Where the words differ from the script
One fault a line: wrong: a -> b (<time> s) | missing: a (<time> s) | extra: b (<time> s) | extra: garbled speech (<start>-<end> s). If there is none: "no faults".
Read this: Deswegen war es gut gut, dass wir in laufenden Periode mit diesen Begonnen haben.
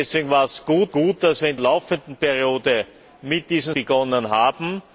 no faults